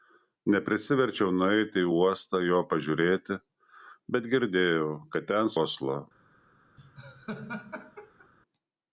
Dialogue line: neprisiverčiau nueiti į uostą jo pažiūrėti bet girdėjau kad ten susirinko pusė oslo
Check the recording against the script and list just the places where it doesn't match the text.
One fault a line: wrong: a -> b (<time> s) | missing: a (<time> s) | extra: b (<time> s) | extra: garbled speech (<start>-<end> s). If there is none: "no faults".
missing: susirinko pusė (5.6 s)